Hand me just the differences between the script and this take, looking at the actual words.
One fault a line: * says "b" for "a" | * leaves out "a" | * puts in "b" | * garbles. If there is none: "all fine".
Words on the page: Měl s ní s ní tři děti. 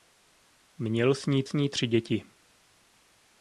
all fine